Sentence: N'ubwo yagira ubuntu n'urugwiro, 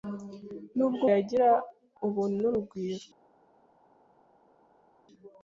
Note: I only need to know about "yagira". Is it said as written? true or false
true